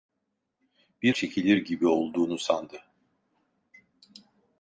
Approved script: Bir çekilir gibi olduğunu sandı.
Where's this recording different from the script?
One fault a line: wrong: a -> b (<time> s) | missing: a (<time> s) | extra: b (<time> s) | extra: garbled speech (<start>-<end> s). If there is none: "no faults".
no faults